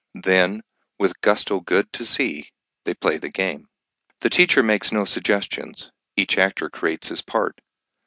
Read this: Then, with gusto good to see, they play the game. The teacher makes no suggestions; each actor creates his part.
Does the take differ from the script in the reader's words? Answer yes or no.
no